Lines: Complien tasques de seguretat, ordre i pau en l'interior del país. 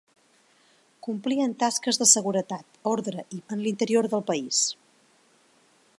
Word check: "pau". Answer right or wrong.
wrong